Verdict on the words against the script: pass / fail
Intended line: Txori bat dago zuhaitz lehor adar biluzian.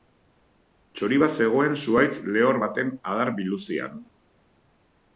fail